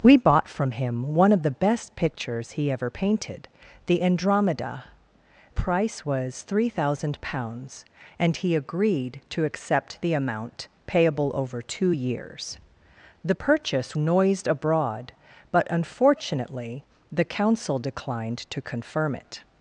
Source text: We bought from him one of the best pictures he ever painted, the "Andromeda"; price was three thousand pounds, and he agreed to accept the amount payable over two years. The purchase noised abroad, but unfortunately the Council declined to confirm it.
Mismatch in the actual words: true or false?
false